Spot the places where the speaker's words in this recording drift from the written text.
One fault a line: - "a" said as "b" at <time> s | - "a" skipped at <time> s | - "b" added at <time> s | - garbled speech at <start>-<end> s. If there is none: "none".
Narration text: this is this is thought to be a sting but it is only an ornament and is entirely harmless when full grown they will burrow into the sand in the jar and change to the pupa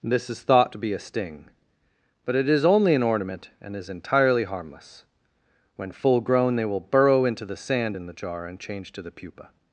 - "this is" skipped at 0.4 s